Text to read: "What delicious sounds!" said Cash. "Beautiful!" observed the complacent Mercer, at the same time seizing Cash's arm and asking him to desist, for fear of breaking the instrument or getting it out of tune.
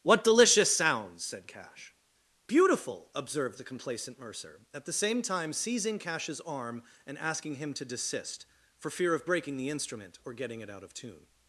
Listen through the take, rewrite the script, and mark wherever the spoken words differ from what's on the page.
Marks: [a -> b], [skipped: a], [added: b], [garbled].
"What delicious sounds!" said Cash. "Beautiful!" observed the complacent Mercer, at the same time seizing Cash's arm and asking him to desist, for fear of breaking the instrument or getting it out of tune.